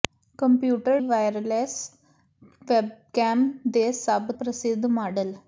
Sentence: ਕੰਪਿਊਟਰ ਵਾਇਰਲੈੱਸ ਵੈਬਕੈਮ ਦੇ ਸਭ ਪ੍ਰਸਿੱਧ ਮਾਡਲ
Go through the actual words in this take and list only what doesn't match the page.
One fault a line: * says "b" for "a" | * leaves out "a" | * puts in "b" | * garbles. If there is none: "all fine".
all fine